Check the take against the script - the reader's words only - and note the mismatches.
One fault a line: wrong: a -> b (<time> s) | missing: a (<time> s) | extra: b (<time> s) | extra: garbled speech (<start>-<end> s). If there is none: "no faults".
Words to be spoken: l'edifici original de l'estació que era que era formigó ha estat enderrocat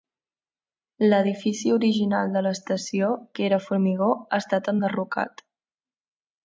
missing: que era (3.6 s)